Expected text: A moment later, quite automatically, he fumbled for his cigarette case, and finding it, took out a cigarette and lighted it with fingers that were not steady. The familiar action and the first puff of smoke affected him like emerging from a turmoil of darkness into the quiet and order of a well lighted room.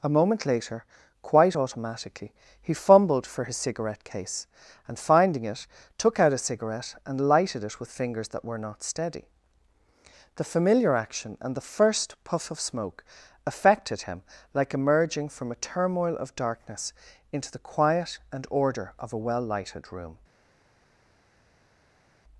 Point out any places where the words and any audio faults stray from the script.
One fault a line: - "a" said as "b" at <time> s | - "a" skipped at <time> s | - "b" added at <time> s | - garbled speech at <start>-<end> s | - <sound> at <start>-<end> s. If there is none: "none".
none